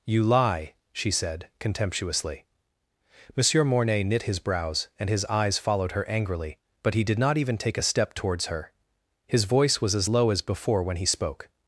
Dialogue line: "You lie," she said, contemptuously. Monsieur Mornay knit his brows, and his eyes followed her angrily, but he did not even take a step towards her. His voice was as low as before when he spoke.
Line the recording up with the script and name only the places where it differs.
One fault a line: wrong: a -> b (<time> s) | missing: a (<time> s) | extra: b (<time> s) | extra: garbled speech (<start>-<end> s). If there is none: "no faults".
no faults